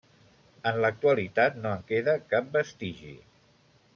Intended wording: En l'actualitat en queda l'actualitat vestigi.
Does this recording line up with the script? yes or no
no